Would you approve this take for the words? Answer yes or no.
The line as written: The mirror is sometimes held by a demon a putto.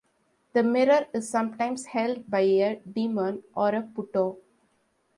no